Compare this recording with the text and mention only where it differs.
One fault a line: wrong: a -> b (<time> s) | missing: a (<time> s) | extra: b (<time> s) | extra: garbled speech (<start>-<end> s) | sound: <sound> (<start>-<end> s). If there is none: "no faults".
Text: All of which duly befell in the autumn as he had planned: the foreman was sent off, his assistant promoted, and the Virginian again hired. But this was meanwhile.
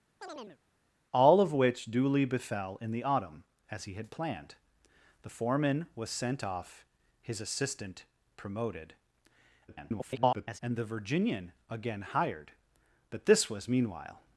sound: chirp (0.2-0.6 s)
extra: garbled speech (9.7-10.6 s)